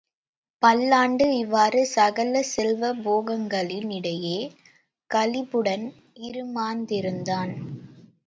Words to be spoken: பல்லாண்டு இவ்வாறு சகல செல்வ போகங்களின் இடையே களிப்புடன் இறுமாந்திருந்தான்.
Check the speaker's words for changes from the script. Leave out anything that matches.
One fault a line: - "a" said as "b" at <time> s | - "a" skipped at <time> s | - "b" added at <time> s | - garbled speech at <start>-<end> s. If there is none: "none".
none